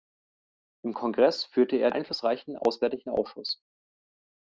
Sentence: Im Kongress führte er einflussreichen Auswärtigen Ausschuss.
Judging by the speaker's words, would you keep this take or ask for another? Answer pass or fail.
pass